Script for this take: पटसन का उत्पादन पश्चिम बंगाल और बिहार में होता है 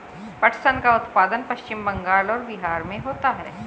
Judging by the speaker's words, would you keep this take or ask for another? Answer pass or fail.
pass